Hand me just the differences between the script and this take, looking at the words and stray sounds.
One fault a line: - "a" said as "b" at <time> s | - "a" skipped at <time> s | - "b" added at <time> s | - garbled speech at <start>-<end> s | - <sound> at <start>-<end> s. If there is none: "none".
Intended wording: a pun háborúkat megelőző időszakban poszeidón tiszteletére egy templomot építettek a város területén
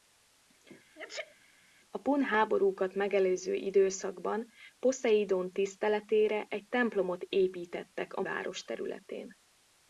- sneeze at 1.0-1.4 s